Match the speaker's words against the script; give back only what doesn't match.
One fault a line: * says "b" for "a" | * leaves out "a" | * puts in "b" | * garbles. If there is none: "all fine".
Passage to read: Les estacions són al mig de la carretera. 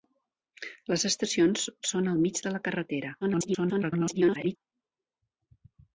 * garbles